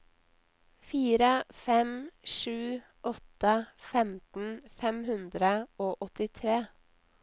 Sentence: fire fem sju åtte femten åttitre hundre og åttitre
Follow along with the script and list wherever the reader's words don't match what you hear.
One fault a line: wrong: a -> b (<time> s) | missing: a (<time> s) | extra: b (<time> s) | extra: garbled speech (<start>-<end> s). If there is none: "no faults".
wrong: åttitre -> fem (4.8 s)